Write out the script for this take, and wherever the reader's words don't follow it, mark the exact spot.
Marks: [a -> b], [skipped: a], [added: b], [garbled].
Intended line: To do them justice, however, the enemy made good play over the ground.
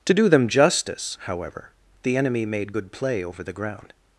To do them justice, however, the enemy made good play over the ground.